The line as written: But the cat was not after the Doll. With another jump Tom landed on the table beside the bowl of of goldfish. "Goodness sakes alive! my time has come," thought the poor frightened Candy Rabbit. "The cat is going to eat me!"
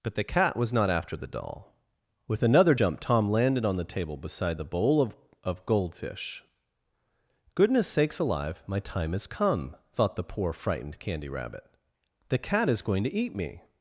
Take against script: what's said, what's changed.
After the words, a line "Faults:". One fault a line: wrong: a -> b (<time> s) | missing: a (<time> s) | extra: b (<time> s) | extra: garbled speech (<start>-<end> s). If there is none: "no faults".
But the cat was not after the Doll. With another jump Tom landed on the table beside the bowl of of goldfish. "Goodness sakes alive! my time has come," thought the poor frightened Candy Rabbit. "The cat is going to eat me!"
Faults:
no faults